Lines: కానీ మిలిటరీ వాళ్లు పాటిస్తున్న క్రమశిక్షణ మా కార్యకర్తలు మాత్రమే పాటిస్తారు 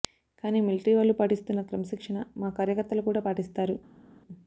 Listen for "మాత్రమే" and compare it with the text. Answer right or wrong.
wrong